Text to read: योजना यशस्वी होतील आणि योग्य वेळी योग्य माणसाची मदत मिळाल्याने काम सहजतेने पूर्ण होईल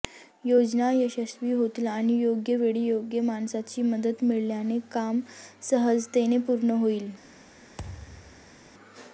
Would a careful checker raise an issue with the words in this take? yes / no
no